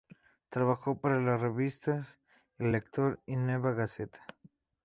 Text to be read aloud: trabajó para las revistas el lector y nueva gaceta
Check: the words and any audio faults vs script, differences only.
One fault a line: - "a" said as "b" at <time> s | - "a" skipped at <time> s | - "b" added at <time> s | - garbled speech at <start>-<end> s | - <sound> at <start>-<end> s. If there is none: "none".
none